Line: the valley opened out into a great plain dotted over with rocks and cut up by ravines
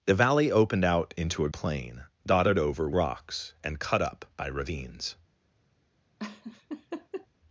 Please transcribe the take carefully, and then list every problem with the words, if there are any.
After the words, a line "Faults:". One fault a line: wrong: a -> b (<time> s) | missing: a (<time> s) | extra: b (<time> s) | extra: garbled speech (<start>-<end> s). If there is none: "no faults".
the valley opened out into a plain dotted over rocks and cut up by ravines
Faults:
missing: great (1.5 s)
missing: with (2.9 s)